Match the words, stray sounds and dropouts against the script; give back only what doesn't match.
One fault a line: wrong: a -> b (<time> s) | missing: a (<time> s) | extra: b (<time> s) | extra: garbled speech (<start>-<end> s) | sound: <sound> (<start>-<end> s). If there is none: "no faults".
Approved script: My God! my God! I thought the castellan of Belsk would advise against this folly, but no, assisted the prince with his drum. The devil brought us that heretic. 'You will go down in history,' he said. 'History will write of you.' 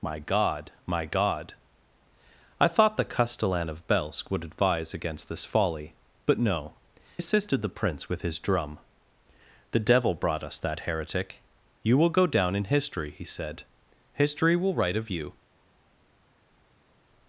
no faults